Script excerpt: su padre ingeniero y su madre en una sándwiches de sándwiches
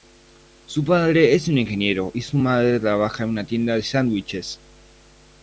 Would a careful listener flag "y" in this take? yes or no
no